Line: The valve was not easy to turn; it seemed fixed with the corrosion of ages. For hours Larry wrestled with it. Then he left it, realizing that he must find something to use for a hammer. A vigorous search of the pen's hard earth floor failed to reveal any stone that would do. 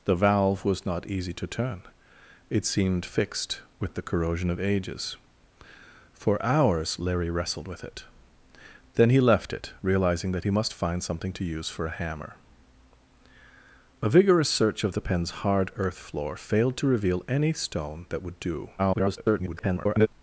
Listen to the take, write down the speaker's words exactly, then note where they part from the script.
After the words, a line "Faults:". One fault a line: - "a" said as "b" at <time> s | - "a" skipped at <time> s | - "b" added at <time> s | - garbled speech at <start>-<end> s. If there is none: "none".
The valve was not easy to turn; it seemed fixed with the corrosion of ages. For hours Larry wrestled with it. Then he left it, realizing that he must find something to use for a hammer. A vigorous search of the pen's hard earth floor failed to reveal any stone that would do. [garbled]
Faults:
- garbled speech at 18.8-20.1 s